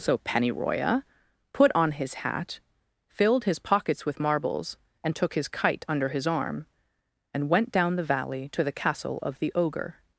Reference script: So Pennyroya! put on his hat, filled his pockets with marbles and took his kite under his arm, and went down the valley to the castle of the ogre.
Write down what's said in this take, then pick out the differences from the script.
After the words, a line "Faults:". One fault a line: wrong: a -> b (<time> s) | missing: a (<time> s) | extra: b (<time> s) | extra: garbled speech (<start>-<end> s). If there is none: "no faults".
So Pennyroya! put on his hat, filled his pockets with marbles and took his kite under his arm, and went down the valley to the castle of the ogre.
Faults:
no faults